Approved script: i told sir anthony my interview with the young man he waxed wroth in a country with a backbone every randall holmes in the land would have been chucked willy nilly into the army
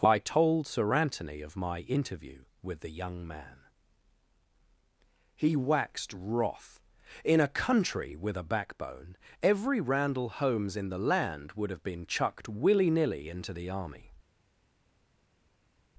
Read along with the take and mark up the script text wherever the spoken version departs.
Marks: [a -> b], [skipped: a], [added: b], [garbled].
i told sir anthony [added: of] my interview with the young man he waxed wroth in a country with a backbone every randall holmes in the land would have been chucked willy nilly into the army